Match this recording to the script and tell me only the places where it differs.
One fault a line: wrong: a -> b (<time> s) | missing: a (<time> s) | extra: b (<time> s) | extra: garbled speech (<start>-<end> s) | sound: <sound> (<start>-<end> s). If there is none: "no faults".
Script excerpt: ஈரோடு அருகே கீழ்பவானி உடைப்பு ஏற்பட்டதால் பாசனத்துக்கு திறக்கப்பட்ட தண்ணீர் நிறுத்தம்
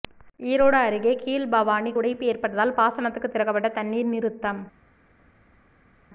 no faults